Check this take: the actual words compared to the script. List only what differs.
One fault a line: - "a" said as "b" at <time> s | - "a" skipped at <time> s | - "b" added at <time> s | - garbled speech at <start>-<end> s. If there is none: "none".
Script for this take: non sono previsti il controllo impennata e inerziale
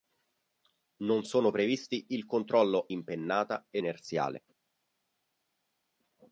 none